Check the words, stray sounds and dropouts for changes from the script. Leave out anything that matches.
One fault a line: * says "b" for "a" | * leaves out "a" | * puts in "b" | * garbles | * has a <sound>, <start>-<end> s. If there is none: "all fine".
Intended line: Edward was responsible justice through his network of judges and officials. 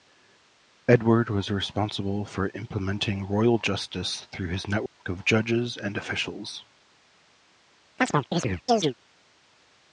* puts in "for implementing royal"
* has a dropout, 4.9-5.0 s
* has a chirp, 8.0-8.9 s